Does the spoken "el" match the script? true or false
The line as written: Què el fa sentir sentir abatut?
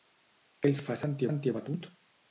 true